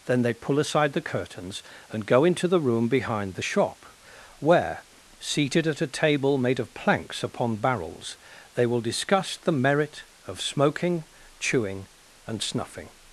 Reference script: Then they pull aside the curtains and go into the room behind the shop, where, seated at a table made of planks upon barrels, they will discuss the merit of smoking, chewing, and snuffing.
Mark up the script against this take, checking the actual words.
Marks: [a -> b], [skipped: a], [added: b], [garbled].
Then they pull aside the curtains and go into the room behind the shop, where, seated at a table made of planks upon barrels, they will discuss the merit of smoking, chewing, and snuffing.